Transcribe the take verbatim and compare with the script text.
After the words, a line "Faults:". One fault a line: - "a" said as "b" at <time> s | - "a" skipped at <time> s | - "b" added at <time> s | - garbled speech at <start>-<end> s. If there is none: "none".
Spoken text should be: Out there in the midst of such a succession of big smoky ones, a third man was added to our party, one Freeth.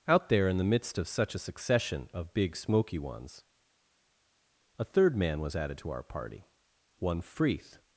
Out there in the midst of such a succession of big smoky ones, a third man was added to our party, one Freeth.
Faults:
none